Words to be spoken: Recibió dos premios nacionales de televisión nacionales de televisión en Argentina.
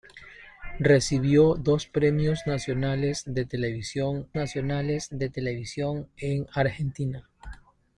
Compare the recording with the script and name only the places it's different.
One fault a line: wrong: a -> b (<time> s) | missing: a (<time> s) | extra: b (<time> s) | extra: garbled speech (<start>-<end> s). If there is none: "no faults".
no faults